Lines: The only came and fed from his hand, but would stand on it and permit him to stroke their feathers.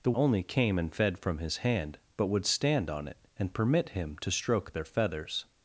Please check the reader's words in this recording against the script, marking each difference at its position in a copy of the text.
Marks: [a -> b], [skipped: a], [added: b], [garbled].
The only came and fed from his hand, but would stand on it and permit him to stroke their feathers.